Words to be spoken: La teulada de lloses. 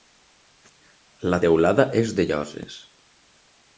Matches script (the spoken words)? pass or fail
fail